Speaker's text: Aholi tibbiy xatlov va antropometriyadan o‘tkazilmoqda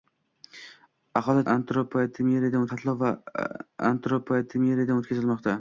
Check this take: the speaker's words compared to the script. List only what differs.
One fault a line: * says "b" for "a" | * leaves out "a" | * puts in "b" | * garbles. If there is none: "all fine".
* says "antropometriyadan" for "tibbiy"